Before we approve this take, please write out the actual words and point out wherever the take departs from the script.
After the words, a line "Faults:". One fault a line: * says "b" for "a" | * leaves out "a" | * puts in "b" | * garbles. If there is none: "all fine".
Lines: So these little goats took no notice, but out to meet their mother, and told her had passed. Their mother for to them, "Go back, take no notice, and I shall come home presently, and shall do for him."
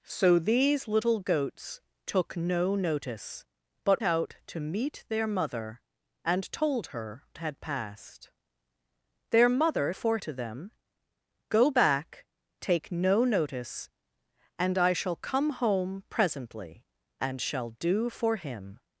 So these little goats took no notice, but out to meet their mother, and told her had passed. Their mother for to them, "Go back, take no notice, and I shall come home presently, and shall do for him."
Faults:
all fine